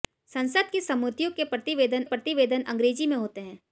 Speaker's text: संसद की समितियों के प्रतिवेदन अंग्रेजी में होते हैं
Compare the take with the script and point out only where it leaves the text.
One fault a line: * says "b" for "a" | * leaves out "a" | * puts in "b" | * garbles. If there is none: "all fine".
* puts in "प्रतिवेदन"